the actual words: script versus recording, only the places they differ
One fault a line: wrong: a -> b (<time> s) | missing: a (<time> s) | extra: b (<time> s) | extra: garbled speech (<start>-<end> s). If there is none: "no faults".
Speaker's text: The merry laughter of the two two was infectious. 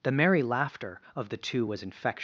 missing: two (1.6 s)